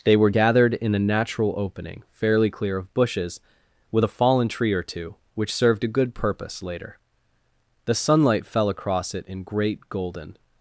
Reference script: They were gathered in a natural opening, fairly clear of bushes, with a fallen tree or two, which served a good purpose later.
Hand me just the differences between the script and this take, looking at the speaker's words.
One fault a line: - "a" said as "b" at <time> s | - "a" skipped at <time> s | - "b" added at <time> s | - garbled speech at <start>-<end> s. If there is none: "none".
- "The sunlight fell across it in great golden" added at 7.9 s